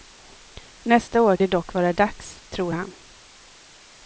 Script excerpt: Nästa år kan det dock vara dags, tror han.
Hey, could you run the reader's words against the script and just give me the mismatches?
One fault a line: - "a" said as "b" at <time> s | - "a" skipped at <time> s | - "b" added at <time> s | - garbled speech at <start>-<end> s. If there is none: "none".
- "kan" skipped at 1.4 s